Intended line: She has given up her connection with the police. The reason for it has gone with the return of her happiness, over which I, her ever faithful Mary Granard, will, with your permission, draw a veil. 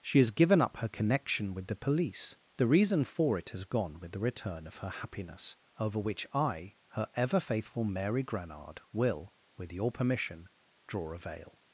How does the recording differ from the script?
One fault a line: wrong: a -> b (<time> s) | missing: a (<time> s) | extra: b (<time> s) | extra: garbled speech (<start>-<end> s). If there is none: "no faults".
no faults